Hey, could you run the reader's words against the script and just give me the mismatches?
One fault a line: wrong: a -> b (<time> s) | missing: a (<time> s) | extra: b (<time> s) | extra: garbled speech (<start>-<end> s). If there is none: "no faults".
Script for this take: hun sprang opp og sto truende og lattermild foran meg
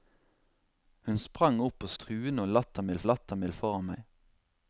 missing: sto (1.9 s)
extra: lattermild (3.1 s)